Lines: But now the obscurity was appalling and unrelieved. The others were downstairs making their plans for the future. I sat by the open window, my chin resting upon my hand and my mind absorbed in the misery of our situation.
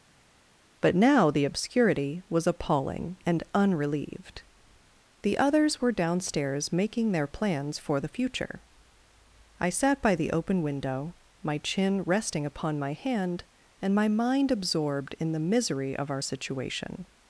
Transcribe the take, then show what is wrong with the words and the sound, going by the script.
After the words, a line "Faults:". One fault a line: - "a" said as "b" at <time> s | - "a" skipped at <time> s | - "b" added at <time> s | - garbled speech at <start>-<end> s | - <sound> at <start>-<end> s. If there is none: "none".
But now the obscurity was appalling and unrelieved. The others were downstairs making their plans for the future. I sat by the open window, my chin resting upon my hand and my mind absorbed in the misery of our situation.
Faults:
none